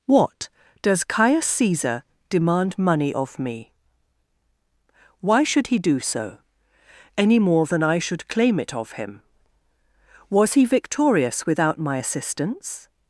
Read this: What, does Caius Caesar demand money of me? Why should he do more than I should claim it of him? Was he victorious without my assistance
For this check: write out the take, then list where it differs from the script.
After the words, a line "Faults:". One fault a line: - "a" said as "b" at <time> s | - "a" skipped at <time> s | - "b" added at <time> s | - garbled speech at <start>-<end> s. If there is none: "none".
What, does Caius Caesar demand money of me? Why should he do so, any more than I should claim it of him? Was he victorious without my assistance
Faults:
- "so any" added at 6.0 s